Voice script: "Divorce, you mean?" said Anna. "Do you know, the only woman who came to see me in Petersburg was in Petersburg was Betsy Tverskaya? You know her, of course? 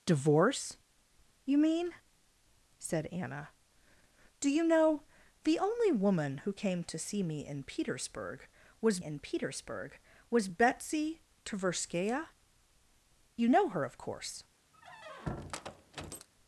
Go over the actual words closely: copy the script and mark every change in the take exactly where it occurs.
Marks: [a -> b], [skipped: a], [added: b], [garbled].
"Divorce, you mean?" said Anna. "Do you know, the only woman who came to see me in Petersburg was in Petersburg was Betsy Tverskaya? You know her, of course?